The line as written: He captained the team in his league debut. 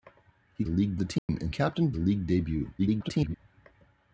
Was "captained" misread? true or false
true